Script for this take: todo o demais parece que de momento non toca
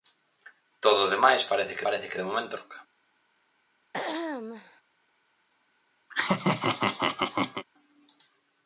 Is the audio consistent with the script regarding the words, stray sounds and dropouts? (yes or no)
no